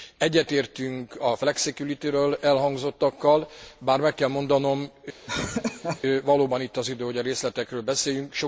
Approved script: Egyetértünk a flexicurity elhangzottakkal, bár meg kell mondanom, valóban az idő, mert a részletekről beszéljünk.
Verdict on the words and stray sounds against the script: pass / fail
fail